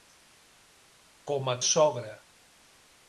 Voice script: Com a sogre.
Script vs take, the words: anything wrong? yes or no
no